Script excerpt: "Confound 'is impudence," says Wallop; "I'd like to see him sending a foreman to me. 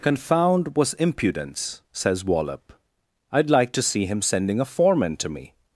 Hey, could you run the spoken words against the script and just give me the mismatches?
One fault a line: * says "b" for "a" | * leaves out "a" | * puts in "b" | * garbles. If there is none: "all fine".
* says "was" for "is"